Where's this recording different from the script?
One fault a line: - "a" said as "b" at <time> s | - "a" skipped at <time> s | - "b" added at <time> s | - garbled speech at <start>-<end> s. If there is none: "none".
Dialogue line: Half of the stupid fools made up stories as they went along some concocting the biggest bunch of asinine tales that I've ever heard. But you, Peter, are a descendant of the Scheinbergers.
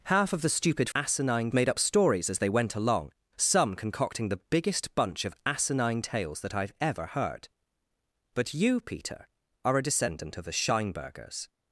- "fools" said as "asinine" at 0.9 s